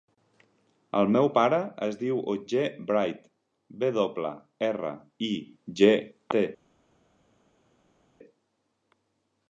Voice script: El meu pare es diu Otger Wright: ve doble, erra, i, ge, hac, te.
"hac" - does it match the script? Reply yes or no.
no